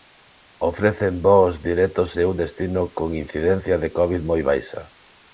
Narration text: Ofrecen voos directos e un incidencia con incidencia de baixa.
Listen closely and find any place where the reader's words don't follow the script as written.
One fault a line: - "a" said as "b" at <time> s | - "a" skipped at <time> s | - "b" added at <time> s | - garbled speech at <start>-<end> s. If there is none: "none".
- "incidencia" said as "destino" at 2.4 s
- "covid moi" added at 4.0 s